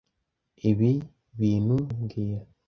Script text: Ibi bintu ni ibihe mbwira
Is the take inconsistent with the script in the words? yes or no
yes